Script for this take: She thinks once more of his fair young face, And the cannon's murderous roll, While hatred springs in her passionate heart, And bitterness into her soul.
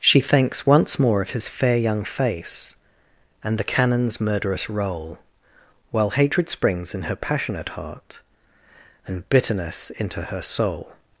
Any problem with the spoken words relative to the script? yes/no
no